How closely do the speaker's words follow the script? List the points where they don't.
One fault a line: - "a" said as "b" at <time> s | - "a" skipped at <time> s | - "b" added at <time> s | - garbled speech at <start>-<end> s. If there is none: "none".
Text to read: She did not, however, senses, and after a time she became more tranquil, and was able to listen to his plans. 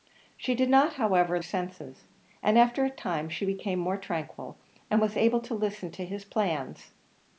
none